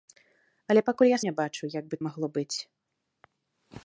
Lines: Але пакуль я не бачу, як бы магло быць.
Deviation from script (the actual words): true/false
false